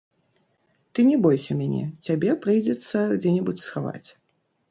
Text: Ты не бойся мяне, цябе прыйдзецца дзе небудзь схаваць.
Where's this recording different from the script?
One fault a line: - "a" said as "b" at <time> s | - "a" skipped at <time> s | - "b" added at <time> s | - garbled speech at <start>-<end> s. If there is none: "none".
none